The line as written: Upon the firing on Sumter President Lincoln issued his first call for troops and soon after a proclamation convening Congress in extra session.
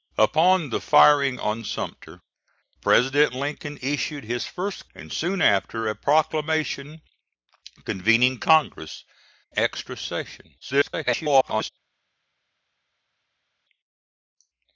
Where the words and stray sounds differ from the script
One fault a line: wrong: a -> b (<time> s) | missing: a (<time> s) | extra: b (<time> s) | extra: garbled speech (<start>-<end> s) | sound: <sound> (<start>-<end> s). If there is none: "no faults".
missing: call for troops (4.9 s)
missing: in (9.0 s)
extra: garbled speech (10.6-11.7 s)